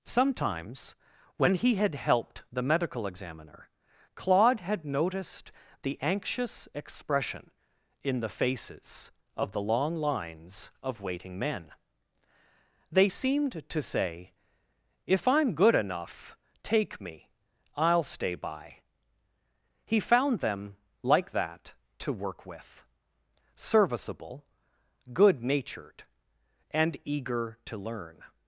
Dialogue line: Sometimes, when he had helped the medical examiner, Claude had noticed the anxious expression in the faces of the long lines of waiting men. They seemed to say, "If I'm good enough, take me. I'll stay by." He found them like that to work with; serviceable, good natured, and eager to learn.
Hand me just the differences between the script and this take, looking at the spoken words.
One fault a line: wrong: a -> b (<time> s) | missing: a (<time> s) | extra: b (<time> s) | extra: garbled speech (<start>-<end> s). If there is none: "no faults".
no faults